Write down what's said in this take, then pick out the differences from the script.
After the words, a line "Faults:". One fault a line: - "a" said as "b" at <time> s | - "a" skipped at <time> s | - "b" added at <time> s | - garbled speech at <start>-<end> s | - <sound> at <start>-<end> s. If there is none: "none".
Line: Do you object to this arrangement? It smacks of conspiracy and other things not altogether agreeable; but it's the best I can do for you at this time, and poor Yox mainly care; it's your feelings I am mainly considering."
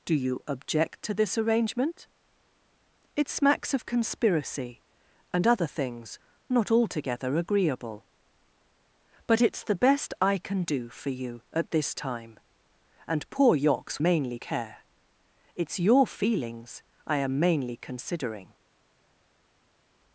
Do you object to this arrangement? It smacks of conspiracy and other things not altogether agreeable; but it's the best I can do for you at this time, and poor Yox mainly care; it's your feelings I am mainly considering."
Faults:
none